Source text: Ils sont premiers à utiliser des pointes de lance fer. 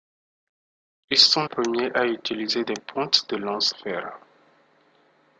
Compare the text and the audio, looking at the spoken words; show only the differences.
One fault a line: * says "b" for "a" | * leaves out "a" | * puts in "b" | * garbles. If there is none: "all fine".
all fine